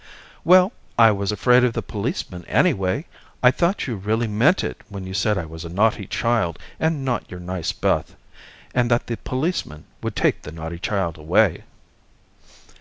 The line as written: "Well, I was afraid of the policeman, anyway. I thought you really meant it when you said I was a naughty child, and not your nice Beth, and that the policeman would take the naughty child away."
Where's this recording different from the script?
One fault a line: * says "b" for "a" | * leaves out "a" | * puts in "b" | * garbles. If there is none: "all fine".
all fine